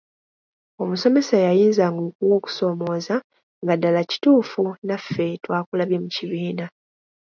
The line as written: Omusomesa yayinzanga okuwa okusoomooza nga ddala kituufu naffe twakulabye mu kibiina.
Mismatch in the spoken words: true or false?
false